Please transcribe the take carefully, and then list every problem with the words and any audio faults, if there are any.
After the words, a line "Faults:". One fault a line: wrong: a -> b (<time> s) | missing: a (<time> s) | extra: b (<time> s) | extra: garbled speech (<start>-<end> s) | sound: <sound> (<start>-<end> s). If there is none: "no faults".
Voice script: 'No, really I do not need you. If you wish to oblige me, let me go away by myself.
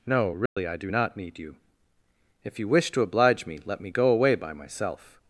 'No, really I do not need you. If you wish to oblige me, let me go away by myself.
Faults:
sound: dropout (0.5-0.6 s)